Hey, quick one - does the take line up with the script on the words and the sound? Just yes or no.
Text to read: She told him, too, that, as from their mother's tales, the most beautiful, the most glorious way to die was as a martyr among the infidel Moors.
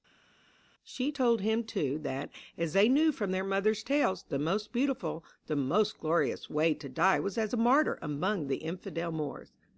no